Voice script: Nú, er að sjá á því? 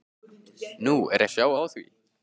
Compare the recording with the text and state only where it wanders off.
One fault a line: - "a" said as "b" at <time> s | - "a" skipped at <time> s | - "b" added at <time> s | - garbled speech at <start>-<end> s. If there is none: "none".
none